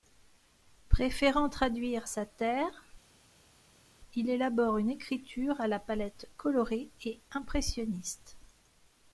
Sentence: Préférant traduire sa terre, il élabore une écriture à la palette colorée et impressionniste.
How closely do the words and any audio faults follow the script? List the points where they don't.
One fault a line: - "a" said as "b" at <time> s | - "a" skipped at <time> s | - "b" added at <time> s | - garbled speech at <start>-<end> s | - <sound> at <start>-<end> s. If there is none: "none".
none